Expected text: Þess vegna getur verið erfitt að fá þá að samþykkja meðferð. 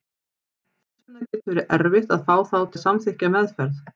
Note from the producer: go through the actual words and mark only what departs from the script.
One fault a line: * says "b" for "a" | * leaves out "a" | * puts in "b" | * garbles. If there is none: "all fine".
all fine